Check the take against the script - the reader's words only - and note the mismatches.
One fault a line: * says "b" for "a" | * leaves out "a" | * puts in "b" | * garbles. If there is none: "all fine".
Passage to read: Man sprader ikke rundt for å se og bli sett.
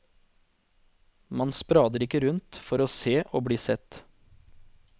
all fine